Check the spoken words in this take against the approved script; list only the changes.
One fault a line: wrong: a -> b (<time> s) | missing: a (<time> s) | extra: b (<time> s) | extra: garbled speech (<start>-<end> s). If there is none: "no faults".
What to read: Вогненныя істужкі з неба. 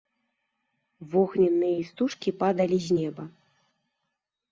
extra: падалі (2.4 s)